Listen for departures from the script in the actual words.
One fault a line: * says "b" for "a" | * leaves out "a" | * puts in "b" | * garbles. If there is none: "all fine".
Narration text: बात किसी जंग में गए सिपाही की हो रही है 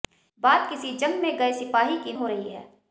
all fine